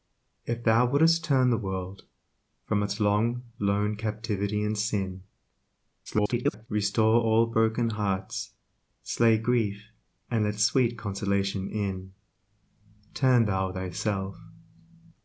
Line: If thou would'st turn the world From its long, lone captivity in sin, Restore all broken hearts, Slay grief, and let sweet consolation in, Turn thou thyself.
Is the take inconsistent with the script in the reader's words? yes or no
yes